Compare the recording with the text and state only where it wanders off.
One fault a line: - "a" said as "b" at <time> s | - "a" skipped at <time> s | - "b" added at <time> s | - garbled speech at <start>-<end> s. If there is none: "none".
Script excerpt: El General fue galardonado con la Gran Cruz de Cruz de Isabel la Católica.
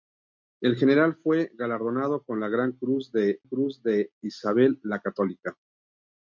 none